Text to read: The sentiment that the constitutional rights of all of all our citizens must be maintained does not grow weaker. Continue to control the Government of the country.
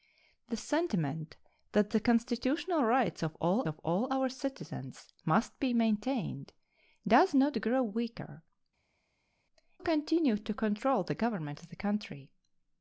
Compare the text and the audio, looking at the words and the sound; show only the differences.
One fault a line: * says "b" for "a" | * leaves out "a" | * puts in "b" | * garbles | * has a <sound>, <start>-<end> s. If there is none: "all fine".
all fine